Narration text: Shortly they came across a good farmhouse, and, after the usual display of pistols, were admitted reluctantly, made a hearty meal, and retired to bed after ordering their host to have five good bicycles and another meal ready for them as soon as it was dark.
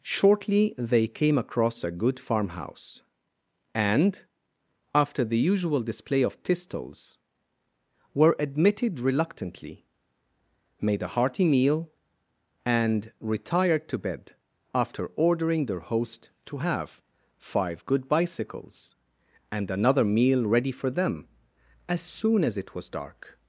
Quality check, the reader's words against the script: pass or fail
pass